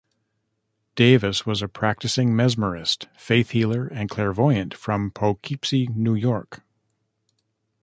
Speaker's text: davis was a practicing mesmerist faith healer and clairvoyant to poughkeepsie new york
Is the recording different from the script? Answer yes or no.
yes